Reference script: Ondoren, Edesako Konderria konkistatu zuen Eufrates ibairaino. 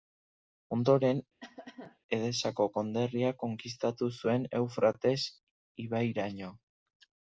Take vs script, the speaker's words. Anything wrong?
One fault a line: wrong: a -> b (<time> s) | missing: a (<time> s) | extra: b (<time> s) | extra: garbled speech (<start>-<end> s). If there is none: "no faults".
no faults